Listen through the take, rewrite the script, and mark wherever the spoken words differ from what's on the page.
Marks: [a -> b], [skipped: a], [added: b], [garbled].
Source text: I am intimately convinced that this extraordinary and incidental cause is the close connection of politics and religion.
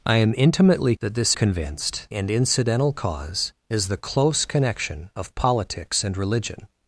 I am intimately [skipped: convinced] that this [extraordinary -> convinced] and incidental cause is the close connection of politics and religion.